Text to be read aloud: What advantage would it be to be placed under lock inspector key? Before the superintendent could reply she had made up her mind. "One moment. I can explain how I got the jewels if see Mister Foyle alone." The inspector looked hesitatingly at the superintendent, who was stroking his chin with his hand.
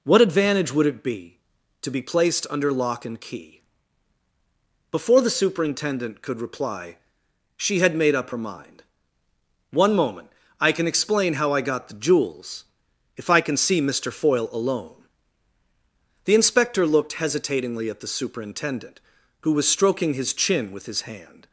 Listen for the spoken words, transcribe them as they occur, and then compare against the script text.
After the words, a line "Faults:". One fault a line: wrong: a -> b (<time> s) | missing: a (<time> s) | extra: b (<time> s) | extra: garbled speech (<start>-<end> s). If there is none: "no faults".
What advantage would it be to be placed under lock and key? Before the superintendent could reply she had made up her mind. "One moment. I can explain how I got the jewels if I can see Mister Foyle alone." The inspector looked hesitatingly at the superintendent, who was stroking his chin with his hand.
Faults:
wrong: inspector -> and (3.0 s)
extra: I can (13.3 s)